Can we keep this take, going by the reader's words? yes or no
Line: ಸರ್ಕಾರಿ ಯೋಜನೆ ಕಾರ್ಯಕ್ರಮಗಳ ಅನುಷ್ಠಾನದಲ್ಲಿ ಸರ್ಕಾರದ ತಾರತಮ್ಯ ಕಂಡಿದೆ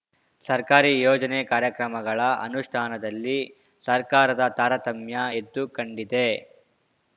no